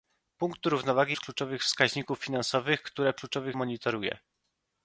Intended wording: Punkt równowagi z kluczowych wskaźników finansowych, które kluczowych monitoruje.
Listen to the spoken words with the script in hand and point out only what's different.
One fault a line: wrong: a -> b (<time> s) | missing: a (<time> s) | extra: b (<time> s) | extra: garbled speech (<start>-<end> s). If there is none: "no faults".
no faults